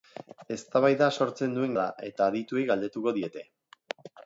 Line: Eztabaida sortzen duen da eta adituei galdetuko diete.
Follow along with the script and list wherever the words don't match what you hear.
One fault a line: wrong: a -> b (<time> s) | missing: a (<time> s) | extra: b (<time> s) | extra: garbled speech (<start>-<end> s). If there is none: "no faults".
no faults